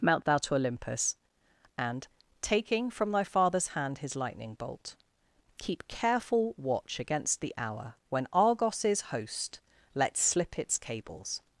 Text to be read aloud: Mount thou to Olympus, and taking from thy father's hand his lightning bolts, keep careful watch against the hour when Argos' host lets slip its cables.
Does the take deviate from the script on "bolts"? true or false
true